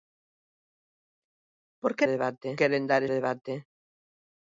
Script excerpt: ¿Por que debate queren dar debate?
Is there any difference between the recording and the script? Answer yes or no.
no